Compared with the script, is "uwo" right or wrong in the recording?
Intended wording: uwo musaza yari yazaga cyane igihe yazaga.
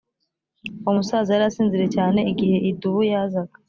right